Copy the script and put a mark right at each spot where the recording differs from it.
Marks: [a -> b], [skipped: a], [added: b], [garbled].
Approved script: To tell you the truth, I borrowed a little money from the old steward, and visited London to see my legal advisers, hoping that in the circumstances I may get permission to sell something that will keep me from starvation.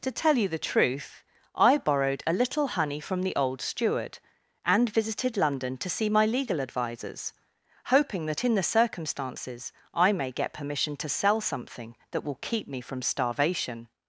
To tell you the truth, I borrowed a little [money -> honey] from the old steward, and visited London to see my legal advisers, hoping that in the circumstances I may get permission to sell something that will keep me from starvation.